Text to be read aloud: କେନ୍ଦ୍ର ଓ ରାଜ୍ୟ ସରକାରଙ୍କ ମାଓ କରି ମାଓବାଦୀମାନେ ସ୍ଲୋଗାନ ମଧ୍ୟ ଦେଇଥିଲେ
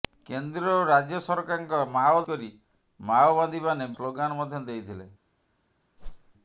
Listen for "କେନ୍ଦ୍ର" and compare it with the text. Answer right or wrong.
right